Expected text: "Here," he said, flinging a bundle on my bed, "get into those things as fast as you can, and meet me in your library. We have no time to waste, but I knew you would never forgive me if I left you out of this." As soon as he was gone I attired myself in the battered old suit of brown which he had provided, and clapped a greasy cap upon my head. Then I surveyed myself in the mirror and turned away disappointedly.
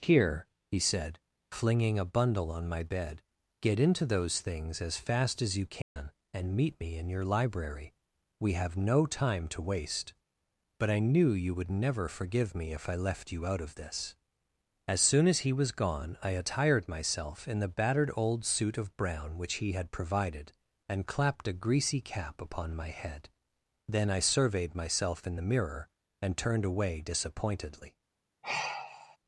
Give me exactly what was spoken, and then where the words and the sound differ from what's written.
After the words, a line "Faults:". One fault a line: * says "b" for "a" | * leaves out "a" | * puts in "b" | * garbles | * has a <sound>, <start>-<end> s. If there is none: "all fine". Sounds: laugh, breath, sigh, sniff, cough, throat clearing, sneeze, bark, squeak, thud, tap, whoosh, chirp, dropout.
"Here," he said, flinging a bundle on my bed, "get into those things as fast as you can, and meet me in your library. We have no time to waste, but I knew you would never forgive me if I left you out of this." As soon as he was gone I attired myself in the battered old suit of brown which he had provided, and clapped a greasy cap upon my head. Then I surveyed myself in the mirror and turned away disappointedly.
Faults:
* has a dropout, 5.8-6.0 s
* has a sigh, 28.4-29.2 s